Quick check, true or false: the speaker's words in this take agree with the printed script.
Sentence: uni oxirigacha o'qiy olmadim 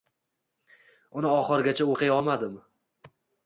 true